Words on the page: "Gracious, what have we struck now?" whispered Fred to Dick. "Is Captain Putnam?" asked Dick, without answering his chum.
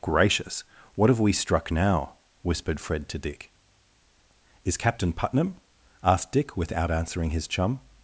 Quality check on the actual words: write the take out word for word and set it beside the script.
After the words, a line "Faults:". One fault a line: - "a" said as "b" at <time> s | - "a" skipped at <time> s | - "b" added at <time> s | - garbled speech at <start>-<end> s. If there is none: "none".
"Gracious, what have we struck now?" whispered Fred to Dick. "Is Captain Putnam?" asked Dick, without answering his chum.
Faults:
none